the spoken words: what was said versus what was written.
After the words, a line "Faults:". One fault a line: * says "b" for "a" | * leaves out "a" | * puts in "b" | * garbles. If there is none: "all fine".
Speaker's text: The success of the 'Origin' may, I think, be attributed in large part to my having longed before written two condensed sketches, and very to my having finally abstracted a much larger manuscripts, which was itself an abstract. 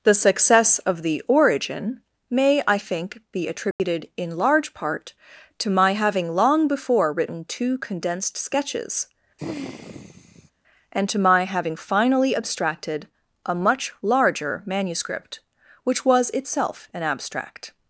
The success of the 'Origin' may, I think, be attributed in large part to my having long before written two condensed sketches, and to my having finally abstracted a much larger manuscript, which was itself an abstract.
Faults:
* says "long" for "longed"
* leaves out "very"
* says "manuscript" for "manuscripts"